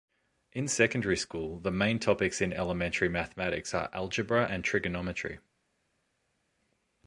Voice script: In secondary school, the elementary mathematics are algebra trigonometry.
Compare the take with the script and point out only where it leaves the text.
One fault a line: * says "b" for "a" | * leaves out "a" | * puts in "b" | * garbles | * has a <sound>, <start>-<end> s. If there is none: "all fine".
* puts in "main topics in"
* puts in "and"